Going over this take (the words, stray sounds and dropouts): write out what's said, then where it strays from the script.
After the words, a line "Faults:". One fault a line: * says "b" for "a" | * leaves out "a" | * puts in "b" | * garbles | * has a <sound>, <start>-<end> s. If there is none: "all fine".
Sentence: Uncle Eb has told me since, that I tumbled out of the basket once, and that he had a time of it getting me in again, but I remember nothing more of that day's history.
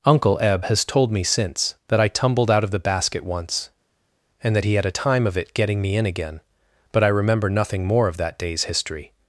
Uncle Eb has told me since, that I tumbled out of the basket once, and that he had a time of it getting me in again, but I remember nothing more of that day's history.
Faults:
all fine